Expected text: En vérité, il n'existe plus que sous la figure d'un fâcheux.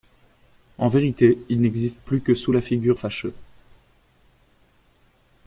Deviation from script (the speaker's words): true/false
true